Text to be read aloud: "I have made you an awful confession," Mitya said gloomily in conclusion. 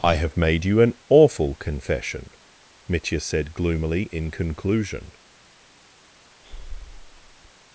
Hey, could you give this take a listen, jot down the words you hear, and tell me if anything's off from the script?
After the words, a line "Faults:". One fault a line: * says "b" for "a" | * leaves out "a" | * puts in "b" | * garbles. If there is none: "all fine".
"I have made you an awful confession," Mitya said gloomily in conclusion.
Faults:
all fine